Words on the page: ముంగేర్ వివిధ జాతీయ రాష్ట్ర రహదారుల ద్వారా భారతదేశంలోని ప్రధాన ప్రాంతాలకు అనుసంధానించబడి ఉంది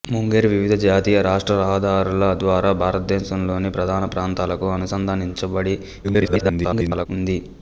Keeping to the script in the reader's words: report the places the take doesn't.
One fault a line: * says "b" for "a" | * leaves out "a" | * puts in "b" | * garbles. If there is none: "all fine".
* garbles